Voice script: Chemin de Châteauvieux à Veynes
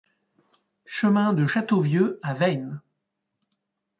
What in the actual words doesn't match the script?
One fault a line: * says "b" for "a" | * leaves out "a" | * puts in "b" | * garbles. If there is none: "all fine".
all fine